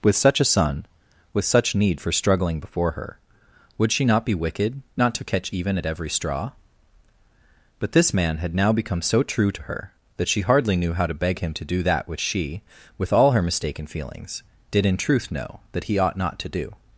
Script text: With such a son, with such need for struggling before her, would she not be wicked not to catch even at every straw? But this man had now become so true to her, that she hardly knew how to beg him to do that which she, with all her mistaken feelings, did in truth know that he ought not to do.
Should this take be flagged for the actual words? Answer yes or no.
no